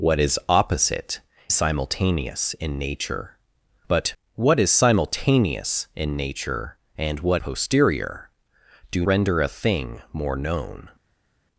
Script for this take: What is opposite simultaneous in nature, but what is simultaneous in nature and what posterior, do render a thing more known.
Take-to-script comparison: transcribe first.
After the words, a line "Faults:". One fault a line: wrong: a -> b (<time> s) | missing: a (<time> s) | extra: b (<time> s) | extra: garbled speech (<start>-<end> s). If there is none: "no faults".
What is opposite simultaneous in nature, but what is simultaneous in nature and what posterior, do render a thing more known.
Faults:
no faults